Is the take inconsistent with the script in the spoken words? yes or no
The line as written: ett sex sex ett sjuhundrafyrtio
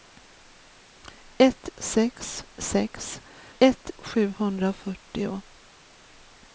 no